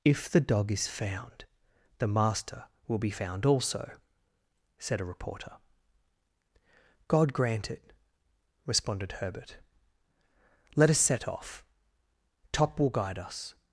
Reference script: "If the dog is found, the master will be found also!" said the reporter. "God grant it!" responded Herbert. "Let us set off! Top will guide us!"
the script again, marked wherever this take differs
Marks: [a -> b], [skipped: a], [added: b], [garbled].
"If the dog is found, the master will be found also!" said [the -> a] reporter. "God grant it!" responded Herbert. "Let us set off! Top will guide us!"